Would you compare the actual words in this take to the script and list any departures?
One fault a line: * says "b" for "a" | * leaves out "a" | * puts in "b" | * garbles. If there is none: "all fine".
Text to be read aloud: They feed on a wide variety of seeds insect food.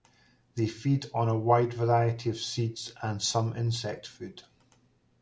* puts in "and some"